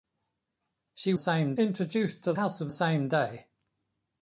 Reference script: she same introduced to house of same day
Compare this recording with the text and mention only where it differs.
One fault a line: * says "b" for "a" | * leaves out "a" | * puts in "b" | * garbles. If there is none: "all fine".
all fine